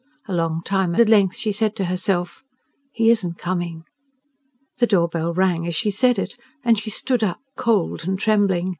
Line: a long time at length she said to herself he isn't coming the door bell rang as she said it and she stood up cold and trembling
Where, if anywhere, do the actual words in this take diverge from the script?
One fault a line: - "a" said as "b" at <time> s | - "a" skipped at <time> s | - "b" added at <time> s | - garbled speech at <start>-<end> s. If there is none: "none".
none